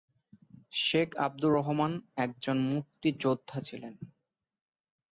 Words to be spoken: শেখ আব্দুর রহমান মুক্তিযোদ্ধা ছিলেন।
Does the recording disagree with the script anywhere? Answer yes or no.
yes